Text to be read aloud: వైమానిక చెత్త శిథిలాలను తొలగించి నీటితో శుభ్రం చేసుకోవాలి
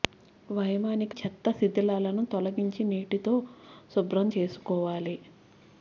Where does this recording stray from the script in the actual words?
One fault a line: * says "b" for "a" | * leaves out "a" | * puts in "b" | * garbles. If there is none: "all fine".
all fine